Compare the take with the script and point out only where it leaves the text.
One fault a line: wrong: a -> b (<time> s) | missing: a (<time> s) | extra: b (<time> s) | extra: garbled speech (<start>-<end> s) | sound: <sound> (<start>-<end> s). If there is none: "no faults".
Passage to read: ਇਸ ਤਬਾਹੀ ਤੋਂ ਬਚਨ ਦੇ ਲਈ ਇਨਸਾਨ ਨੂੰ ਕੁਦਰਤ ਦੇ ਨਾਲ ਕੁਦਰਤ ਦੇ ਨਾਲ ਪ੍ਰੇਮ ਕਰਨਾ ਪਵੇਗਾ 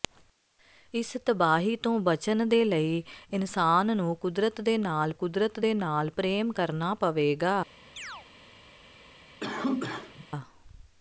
sound: chirp (8.0-8.3 s)
sound: cough (9.4-10.3 s)